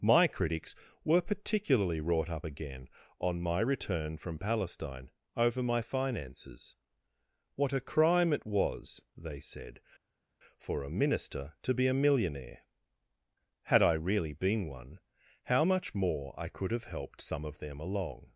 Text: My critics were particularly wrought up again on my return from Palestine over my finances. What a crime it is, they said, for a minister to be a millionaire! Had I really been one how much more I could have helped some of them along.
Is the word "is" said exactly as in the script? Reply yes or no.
no